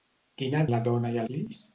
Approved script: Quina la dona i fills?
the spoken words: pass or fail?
pass